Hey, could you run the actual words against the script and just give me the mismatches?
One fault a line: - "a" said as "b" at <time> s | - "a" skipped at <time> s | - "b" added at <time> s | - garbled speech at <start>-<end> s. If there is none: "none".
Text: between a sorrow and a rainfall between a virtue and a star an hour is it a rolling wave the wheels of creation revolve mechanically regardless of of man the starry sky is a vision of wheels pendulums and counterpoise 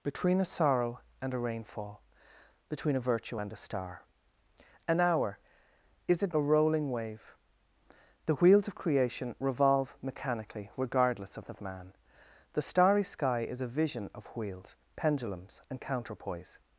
none